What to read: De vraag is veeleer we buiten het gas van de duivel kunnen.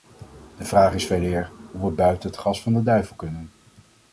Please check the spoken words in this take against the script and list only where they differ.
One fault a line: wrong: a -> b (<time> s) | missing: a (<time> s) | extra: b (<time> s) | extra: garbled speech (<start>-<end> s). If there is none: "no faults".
extra: hoe (1.7 s)